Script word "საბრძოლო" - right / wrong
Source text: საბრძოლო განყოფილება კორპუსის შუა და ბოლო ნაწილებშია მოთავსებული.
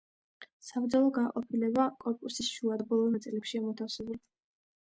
right